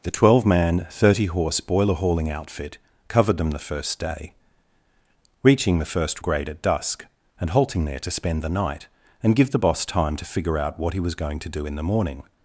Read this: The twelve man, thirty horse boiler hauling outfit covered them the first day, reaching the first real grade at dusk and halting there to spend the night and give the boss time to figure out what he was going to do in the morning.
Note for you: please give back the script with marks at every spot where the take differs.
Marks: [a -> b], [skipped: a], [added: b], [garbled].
The twelve man, thirty horse boiler hauling outfit covered them the first day, reaching the first [skipped: real] grade at dusk and halting there to spend the night and give the boss time to figure out what he was going to do in the morning.